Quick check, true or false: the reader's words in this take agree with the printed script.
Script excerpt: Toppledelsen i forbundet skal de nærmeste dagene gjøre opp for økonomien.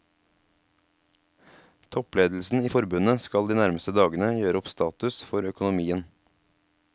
false